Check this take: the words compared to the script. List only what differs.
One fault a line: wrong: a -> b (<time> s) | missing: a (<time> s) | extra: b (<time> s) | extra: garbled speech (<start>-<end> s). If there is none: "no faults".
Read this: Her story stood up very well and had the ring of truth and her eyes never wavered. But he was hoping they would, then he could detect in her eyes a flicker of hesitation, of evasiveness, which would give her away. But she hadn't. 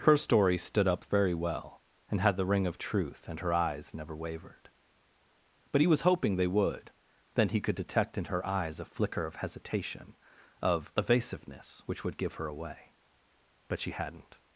no faults